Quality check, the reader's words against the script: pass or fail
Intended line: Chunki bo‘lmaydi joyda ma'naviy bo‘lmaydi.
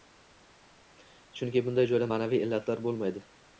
fail